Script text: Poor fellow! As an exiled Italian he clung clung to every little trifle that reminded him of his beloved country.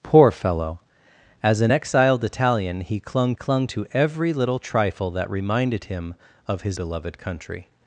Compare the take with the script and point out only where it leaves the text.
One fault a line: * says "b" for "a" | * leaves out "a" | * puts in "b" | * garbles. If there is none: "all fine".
all fine